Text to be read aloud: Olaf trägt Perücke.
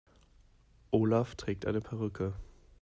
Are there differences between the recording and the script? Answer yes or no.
yes